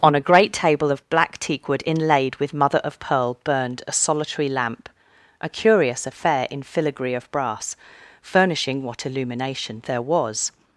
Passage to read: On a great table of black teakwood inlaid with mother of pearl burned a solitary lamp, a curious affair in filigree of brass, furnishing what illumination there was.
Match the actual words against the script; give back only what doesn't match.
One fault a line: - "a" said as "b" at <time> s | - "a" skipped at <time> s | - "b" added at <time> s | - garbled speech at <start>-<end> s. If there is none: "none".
none